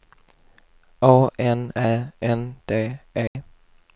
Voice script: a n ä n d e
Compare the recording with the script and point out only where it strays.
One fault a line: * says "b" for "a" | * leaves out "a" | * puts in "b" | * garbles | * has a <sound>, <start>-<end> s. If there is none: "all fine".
* has a dropout, 3.3-3.4 s